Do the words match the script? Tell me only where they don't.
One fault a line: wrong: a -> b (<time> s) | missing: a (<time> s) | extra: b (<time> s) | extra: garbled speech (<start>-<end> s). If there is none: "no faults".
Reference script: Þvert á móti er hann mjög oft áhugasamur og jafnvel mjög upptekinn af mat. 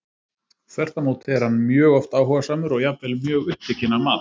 no faults